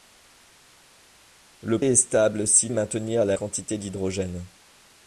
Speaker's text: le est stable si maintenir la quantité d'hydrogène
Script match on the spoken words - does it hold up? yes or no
yes